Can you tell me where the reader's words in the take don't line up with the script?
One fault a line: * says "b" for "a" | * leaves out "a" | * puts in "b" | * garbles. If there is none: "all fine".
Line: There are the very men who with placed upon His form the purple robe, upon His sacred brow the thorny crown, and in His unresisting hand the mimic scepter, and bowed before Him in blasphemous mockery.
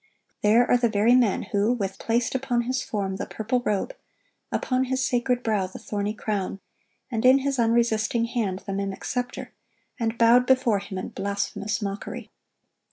all fine